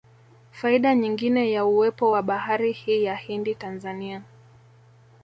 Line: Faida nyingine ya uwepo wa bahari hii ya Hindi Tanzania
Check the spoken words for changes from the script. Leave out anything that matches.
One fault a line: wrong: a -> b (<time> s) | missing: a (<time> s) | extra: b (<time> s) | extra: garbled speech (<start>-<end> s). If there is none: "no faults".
no faults